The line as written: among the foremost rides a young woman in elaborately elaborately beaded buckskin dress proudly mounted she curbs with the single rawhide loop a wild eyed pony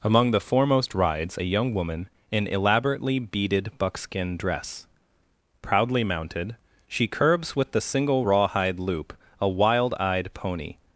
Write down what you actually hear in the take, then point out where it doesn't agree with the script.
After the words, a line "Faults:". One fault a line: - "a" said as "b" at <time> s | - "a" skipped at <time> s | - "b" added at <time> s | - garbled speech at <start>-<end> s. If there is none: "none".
among the foremost rides a young woman in elaborately beaded buckskin dress proudly mounted she curbs with the single rawhide loop a wild eyed pony
Faults:
- "elaborately" skipped at 3.2 s